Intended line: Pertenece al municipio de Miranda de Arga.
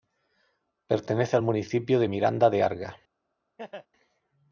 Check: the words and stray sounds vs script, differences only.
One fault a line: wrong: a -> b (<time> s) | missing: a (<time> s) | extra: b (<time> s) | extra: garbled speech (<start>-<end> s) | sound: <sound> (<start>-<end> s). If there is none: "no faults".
sound: laugh (3.6-3.9 s)